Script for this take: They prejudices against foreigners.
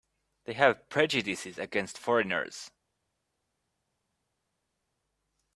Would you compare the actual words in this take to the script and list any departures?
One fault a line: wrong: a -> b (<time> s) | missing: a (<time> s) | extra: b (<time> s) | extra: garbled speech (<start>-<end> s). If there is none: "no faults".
extra: have (0.5 s)